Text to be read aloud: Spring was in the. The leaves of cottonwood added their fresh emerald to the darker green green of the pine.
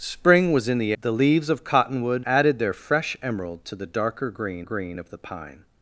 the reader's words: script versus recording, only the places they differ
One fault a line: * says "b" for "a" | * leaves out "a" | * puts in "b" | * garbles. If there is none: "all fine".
all fine